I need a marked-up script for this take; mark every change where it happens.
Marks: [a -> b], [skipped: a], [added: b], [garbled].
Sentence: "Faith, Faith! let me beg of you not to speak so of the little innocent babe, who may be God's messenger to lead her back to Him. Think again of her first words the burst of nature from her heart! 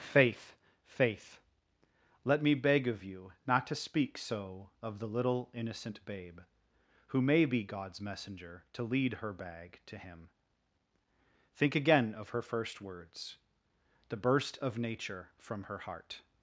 "Faith, Faith! let me beg of you not to speak so of the little innocent babe, who may be God's messenger to lead her [back -> bag] to Him. Think again of her first words the burst of nature from her heart!